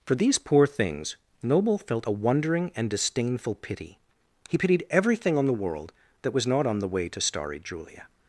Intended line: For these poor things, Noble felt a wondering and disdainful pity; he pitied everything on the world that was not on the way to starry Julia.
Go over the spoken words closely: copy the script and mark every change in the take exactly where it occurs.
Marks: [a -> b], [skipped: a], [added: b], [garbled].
For these poor things, Noble felt a wondering and disdainful pity; he pitied everything on the world that was not on the way to starry Julia.